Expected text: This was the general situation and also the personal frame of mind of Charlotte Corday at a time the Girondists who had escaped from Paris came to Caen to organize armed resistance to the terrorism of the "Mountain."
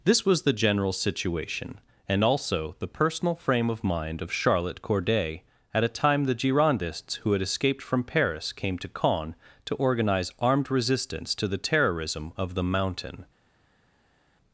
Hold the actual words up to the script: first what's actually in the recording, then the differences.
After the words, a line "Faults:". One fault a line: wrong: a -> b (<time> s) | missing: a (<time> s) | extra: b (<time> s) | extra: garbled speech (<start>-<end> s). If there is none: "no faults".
This was the general situation and also the personal frame of mind of Charlotte Corday at a time the Girondists who had escaped from Paris came to Caen to organize armed resistance to the terrorism of the "Mountain."
Faults:
no faults